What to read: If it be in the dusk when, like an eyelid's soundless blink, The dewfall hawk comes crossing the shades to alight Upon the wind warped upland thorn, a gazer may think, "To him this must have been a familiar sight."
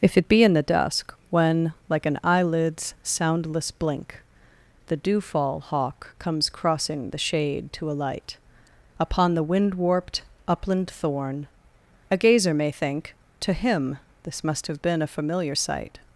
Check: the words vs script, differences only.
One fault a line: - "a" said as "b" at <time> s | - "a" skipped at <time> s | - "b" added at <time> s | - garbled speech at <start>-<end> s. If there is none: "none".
- "shades" said as "shade" at 7.2 s